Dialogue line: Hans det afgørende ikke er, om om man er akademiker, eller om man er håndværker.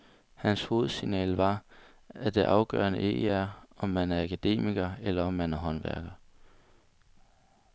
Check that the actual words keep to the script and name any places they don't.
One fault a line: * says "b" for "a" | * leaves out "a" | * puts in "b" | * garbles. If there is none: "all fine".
* puts in "hovedsignal var at"
* leaves out "om"